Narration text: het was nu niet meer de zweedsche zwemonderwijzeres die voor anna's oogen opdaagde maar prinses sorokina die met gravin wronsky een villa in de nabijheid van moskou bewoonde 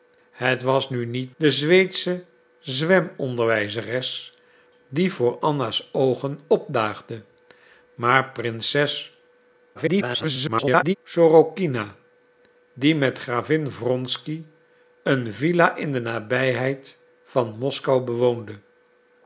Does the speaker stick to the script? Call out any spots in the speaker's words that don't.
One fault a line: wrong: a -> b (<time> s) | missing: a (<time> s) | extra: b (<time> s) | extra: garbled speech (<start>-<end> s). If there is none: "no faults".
missing: meer (1.3 s)
extra: garbled speech (9.7-10.9 s)